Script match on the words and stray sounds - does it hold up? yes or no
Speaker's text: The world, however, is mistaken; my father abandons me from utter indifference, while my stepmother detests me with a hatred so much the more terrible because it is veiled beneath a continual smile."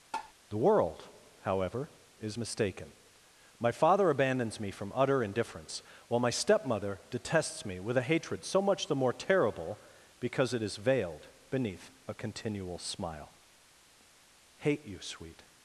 no